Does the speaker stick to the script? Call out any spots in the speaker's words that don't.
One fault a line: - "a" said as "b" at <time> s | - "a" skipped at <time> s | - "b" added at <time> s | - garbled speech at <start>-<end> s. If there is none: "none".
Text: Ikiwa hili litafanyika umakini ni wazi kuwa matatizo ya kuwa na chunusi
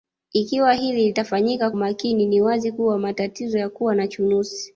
none